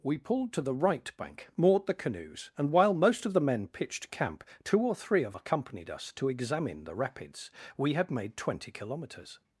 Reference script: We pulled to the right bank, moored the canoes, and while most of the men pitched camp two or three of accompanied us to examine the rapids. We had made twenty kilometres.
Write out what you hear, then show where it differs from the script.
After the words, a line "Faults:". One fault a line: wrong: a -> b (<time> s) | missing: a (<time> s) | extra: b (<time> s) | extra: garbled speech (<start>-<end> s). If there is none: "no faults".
We pulled to the right bank, moored the canoes, and while most of the men pitched camp two or three of accompanied us to examine the rapids. We had made twenty kilometres.
Faults:
no faults